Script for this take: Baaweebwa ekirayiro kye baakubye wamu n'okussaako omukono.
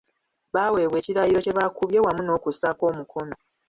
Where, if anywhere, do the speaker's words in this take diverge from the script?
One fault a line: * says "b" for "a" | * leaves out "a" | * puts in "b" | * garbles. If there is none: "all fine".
all fine